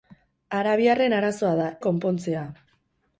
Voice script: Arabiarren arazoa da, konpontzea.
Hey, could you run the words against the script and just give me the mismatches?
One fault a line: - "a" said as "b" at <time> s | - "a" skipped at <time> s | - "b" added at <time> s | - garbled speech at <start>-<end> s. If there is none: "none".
none